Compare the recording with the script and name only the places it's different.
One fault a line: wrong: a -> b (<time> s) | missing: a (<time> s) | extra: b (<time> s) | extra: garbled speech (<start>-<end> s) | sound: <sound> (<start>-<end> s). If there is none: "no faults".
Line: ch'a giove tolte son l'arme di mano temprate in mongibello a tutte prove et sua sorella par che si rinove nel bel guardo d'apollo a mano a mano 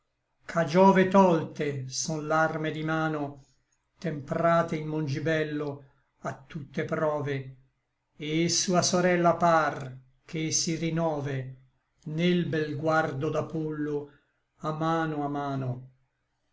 no faults